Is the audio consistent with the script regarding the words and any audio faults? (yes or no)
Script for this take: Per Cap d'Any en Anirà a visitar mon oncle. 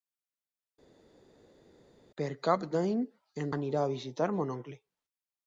yes